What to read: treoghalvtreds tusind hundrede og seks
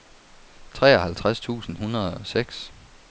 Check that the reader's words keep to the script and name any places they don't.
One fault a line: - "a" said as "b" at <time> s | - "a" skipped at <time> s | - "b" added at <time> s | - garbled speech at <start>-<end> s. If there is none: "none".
none